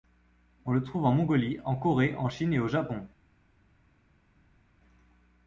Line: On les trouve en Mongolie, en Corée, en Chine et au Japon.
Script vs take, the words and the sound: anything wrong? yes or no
yes